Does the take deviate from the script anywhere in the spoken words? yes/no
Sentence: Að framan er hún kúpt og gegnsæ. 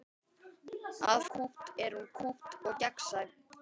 yes